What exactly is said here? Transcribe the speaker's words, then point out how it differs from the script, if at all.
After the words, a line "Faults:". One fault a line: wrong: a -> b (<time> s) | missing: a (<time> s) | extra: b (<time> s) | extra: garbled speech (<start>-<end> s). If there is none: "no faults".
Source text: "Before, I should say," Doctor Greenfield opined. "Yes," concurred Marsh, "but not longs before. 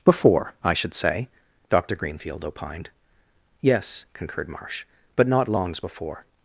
"Before, I should say," Doctor Greenfield opined. "Yes," concurred Marsh, "but not longs before.
Faults:
no faults